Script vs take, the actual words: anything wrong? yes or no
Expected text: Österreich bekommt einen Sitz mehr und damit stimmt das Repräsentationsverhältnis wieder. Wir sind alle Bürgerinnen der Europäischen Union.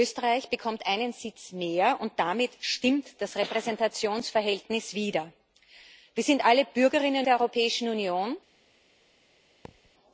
no